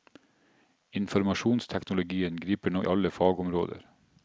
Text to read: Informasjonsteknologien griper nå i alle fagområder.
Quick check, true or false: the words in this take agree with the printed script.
true